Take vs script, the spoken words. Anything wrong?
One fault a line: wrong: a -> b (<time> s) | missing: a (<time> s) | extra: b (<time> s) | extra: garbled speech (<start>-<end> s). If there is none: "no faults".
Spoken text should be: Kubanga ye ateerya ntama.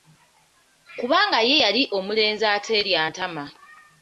extra: yali omulenzi (1.6 s)